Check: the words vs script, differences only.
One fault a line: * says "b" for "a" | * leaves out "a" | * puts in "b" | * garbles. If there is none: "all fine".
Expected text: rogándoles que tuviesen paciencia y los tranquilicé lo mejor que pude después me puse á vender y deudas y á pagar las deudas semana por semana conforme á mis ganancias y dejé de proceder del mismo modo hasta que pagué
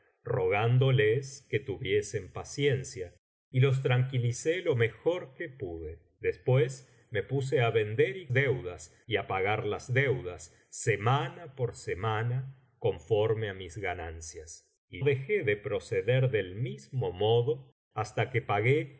all fine